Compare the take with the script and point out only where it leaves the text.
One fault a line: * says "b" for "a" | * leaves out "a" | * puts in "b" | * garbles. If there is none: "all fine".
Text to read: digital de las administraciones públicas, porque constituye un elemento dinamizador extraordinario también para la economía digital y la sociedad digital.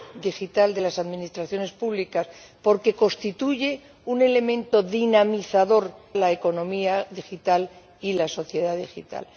* leaves out "extraordinario también para"